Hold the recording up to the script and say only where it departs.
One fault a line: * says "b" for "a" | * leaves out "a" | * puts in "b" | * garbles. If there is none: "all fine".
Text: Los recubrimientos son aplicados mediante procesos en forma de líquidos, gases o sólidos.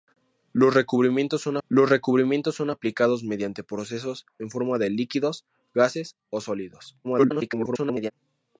* puts in "los recubrimientos son"
* garbles